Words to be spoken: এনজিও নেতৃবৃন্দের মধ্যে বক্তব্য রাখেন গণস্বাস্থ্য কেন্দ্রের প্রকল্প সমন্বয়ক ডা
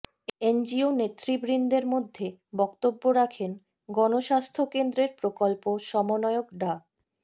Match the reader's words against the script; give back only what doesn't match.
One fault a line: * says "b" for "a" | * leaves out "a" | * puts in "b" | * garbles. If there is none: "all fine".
all fine